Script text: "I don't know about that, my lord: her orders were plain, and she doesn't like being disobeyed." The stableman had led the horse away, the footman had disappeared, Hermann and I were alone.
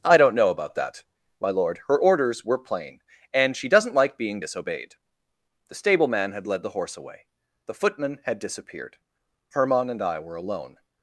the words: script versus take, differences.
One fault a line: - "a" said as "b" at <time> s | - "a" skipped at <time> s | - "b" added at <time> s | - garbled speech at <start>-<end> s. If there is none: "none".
none